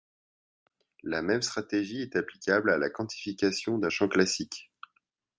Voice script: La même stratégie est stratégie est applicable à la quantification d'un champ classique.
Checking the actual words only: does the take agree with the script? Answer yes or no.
no